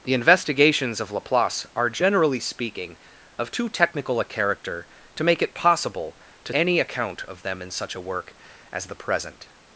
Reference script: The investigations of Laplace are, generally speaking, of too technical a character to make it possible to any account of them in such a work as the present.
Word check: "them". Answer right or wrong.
right